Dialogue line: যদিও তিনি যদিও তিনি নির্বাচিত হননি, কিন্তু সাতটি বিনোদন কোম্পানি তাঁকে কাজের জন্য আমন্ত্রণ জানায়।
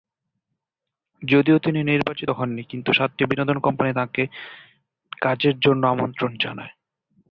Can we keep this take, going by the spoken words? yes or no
no